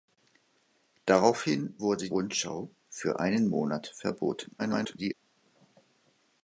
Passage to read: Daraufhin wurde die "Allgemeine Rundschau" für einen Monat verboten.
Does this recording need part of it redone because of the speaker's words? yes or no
yes